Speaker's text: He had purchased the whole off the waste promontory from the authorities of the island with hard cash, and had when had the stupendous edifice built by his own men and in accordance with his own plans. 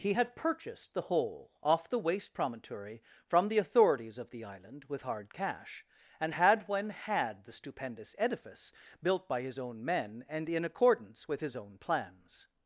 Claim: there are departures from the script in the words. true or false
false